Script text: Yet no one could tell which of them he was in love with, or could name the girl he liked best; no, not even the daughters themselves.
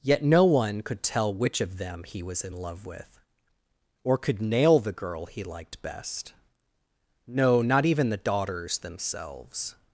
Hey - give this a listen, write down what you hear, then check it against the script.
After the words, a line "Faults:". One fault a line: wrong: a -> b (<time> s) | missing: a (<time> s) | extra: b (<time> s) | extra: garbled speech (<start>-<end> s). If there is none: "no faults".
Yet no one could tell which of them he was in love with, or could nail the girl he liked best; no, not even the daughters themselves.
Faults:
wrong: name -> nail (4.4 s)